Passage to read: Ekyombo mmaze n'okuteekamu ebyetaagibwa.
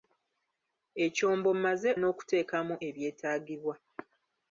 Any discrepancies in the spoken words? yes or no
no